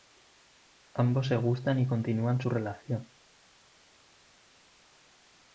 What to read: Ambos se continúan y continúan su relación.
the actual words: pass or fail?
fail